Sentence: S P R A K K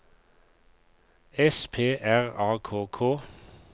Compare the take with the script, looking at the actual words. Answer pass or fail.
pass